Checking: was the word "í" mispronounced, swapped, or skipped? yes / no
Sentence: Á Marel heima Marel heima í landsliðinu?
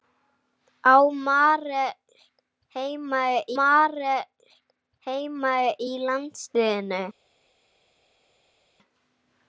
no